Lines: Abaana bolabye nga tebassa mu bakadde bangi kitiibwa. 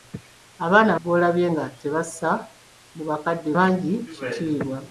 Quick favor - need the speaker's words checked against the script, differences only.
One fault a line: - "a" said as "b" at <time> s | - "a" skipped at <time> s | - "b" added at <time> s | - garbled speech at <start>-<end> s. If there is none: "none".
none